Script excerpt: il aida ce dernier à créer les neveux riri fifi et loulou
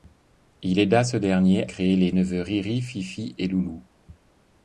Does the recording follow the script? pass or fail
fail